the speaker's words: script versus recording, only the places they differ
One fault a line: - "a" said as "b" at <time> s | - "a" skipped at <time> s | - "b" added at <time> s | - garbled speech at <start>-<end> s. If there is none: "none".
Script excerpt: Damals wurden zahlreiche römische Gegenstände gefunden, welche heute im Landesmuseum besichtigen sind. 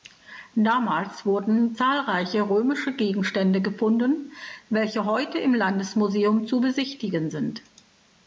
- "zu" added at 6.4 s